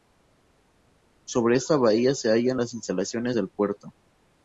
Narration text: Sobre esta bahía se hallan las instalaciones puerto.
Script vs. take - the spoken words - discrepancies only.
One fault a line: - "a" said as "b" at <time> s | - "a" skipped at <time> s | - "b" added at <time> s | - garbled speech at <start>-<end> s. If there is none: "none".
- "del" added at 3.3 s